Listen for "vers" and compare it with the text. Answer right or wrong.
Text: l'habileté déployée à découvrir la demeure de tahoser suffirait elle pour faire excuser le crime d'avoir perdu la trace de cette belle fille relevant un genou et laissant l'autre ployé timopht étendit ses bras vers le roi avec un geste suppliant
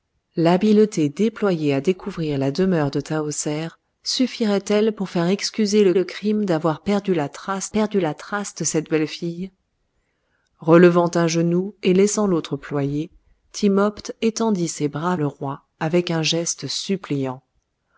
wrong